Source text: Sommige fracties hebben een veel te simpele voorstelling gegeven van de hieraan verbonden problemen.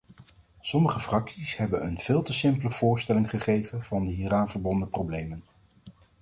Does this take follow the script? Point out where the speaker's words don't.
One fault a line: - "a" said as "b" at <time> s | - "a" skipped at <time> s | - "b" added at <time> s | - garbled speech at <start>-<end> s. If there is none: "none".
none